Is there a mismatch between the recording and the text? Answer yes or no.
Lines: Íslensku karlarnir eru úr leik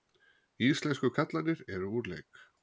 no